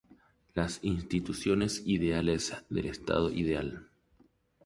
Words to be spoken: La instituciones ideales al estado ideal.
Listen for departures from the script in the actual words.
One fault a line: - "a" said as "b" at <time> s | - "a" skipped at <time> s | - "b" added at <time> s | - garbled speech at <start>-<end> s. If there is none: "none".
- "La" said as "Las" at 0.6 s
- "al" said as "del" at 2.7 s